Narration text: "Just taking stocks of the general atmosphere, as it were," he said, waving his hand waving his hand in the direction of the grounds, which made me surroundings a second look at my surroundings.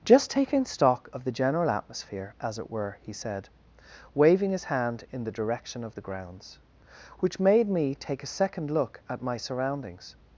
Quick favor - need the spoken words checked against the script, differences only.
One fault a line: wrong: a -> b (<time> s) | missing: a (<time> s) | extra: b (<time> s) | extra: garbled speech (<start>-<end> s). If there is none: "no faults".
wrong: stocks -> stock (0.7 s)
missing: waving his hand (5.0 s)
wrong: surroundings -> take (7.9 s)